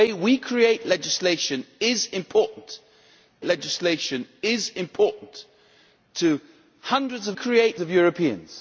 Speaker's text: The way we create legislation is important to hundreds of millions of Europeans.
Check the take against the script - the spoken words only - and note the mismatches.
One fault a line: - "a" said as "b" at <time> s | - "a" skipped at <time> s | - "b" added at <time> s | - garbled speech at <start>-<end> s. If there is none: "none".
- "legislation is important" added at 3.4 s
- "millions" said as "create" at 7.3 s